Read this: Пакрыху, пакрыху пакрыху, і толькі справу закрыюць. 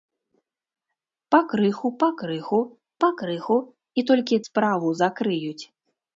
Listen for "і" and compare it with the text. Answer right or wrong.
right